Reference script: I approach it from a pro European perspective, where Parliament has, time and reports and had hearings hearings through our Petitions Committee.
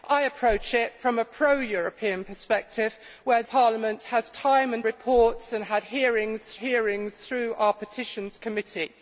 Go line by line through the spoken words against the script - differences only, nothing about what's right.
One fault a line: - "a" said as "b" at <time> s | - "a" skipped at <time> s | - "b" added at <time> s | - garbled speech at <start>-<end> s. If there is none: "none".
none